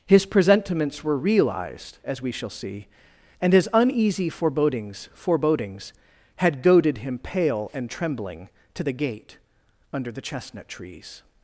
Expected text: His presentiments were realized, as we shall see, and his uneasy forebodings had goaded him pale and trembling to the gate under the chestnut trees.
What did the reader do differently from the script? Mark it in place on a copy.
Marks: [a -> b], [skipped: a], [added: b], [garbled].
His presentiments were realized, as we shall see, and his uneasy forebodings [added: forebodings] had goaded him pale and trembling to the gate under the chestnut trees.